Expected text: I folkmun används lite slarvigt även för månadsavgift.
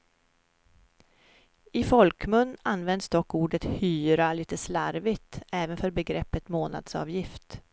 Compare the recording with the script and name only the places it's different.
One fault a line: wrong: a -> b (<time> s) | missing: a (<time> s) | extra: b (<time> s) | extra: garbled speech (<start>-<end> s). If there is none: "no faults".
extra: dock ordet hyra (3.1 s)
extra: begreppet (5.9 s)